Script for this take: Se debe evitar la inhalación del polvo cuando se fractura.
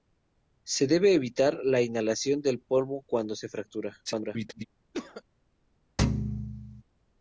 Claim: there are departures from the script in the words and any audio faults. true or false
true